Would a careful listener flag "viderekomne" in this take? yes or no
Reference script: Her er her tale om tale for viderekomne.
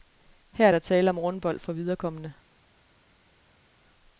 no